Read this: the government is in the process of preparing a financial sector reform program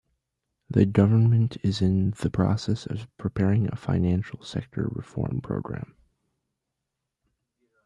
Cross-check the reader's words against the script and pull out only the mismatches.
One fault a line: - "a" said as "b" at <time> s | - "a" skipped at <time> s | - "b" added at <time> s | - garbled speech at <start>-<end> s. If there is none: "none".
none